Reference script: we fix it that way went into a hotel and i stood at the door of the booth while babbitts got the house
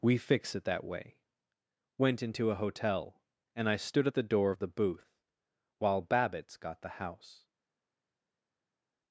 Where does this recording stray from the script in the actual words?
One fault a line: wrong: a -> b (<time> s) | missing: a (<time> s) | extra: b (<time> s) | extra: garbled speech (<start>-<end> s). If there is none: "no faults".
no faults